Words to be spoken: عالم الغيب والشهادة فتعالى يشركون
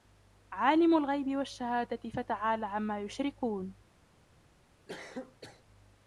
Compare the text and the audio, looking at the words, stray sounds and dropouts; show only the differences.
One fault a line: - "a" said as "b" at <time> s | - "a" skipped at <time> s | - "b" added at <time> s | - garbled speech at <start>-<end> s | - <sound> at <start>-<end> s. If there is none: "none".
- "عما" added at 2.7 s
- cough at 4.9-5.6 s